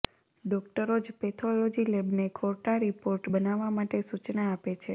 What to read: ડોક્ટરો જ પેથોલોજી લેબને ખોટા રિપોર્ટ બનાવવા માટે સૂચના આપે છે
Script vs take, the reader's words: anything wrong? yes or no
no